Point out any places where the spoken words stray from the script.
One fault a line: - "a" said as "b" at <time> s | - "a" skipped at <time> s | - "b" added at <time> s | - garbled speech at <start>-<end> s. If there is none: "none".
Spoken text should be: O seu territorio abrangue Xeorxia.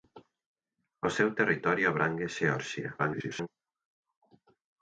- garbled speech at 3.0-3.5 s